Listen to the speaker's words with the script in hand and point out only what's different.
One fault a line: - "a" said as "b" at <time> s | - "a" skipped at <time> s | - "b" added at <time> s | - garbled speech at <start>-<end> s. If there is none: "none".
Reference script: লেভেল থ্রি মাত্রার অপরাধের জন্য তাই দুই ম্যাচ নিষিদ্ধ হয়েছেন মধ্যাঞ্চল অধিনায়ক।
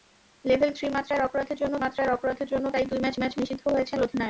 - "মাত্রার অপরাধের জন্য" added at 1.8 s
- "ম্যাচ" added at 3.2 s
- "মধ্যাঞ্চল" skipped at 4.0 s